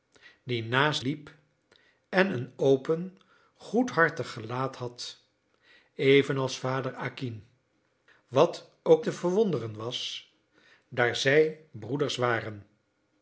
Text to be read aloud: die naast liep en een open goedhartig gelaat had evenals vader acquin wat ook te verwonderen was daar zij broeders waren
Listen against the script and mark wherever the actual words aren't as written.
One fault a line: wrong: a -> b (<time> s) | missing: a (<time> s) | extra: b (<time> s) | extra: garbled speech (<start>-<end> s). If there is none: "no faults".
no faults